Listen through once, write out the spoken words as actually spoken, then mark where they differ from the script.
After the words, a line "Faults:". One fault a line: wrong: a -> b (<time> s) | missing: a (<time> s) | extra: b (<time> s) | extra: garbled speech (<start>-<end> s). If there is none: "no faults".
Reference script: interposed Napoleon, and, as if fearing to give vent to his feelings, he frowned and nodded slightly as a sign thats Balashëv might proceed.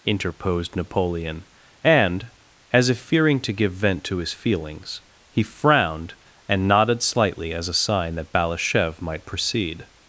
interposed Napoleon, and, as if fearing to give vent to his feelings, he frowned and nodded slightly as a sign that Balashëv might proceed.
Faults:
wrong: thats -> that (8.2 s)